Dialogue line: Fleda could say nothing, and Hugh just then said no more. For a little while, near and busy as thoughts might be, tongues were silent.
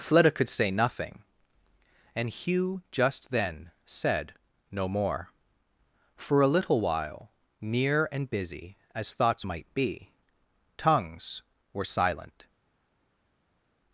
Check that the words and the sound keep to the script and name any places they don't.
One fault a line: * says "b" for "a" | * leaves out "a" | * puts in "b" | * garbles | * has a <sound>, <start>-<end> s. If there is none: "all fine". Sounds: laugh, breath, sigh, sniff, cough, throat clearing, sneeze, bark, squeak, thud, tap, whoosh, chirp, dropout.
all fine